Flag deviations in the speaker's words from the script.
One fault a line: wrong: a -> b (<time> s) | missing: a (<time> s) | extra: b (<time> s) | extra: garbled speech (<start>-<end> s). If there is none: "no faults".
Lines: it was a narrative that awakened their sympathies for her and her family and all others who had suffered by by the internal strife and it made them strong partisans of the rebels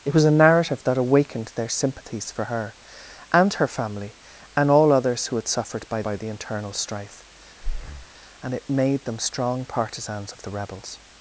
no faults